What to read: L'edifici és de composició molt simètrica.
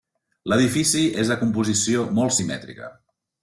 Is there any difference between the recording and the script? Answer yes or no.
no